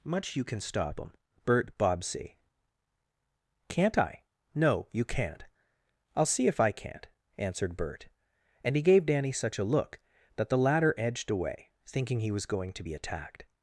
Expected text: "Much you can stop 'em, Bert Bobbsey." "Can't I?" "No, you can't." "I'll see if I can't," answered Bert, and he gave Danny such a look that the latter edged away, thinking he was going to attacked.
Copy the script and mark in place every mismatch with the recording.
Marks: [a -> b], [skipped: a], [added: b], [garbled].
"Much you can stop 'em, Bert Bobbsey." "Can't I?" "No, you can't." "I'll see if I can't," answered Bert, and he gave Danny such a look that the latter edged away, thinking he was going to [added: be] attacked.